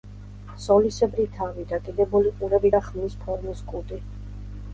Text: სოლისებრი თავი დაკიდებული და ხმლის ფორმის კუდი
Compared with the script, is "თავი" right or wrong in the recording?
right